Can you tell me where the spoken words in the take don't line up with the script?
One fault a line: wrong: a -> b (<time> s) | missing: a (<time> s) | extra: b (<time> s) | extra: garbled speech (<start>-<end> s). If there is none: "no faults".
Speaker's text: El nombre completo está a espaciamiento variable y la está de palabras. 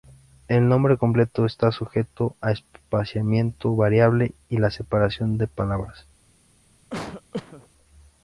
extra: sujeto (1.7 s)
wrong: está -> separación (4.7 s)